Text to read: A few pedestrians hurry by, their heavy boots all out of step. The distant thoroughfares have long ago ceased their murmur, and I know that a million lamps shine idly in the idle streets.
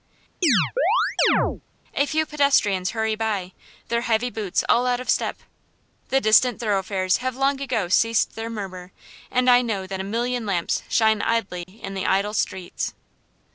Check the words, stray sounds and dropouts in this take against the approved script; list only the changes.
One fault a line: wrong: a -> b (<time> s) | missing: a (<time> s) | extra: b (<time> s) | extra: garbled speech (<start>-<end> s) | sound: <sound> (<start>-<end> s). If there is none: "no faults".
sound: chirp (0.4-1.6 s)
sound: dropout (11.6-11.7 s)